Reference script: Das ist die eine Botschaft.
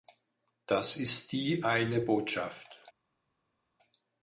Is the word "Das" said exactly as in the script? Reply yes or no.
yes